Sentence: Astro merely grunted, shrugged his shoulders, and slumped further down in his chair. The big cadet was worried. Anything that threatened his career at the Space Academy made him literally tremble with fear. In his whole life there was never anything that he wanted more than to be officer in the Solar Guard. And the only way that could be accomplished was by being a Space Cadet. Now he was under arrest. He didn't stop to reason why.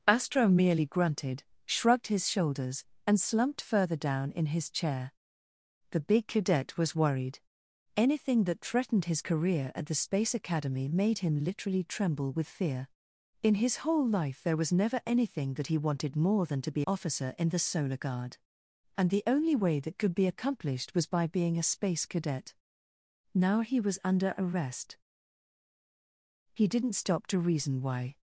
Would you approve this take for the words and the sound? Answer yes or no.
yes